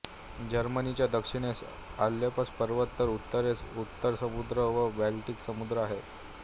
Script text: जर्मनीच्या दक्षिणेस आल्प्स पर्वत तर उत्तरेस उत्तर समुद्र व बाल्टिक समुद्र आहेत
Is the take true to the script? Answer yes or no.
yes